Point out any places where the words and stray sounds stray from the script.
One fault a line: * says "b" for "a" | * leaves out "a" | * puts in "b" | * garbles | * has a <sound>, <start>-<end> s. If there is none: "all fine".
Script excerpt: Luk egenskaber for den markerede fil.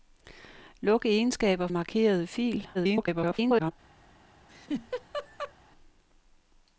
* leaves out "for den"
* garbles
* has a laugh, 4.5-5.5 s